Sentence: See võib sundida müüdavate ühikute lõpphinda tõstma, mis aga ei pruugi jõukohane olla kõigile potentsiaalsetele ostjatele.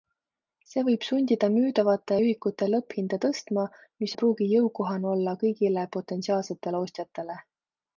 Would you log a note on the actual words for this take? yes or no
yes